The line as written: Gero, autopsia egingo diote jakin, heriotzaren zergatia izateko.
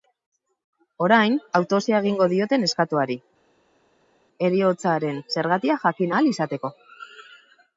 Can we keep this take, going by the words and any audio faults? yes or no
no